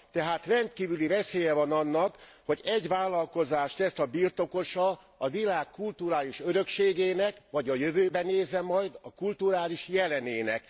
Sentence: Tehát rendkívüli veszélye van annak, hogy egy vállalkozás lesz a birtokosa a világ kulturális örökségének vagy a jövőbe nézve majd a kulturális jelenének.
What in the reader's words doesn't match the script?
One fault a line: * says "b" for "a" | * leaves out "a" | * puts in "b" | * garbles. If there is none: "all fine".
all fine